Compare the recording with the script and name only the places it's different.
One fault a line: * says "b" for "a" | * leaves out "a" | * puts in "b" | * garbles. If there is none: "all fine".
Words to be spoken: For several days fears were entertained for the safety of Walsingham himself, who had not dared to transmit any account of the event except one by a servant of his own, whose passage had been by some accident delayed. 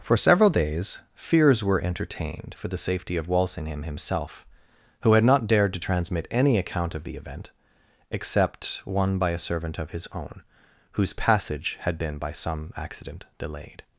all fine